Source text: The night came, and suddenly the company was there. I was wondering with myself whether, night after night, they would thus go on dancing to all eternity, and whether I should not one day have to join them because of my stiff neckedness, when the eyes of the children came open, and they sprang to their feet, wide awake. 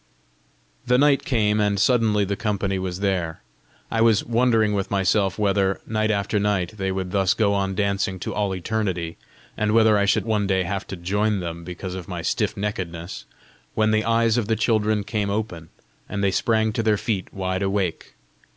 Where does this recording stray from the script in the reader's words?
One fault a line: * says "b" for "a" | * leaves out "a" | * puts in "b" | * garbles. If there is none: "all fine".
* leaves out "not"